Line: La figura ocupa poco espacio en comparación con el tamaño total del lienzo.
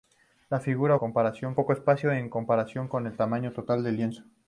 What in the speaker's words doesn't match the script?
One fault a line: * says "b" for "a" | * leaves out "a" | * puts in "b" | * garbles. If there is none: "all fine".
* says "comparación" for "ocupa"